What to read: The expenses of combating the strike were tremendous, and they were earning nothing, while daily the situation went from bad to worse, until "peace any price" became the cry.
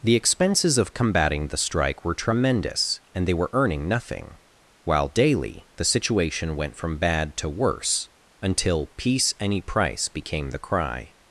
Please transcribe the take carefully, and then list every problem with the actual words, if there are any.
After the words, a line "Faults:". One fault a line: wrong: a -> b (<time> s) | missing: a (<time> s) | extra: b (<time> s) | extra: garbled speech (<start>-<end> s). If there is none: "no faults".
The expenses of combating the strike were tremendous, and they were earning nothing, while daily the situation went from bad to worse, until "peace any price" became the cry.
Faults:
no faults